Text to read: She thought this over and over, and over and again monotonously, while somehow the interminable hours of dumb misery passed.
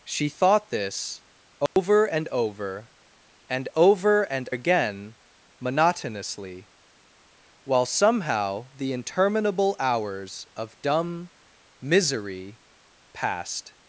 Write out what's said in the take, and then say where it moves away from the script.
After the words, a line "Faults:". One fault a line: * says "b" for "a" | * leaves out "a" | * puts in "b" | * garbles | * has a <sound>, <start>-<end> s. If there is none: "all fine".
She thought this over and over, and over and again monotonously, while somehow the interminable hours of dumb misery passed.
Faults:
* has a dropout, 1.7-1.8 s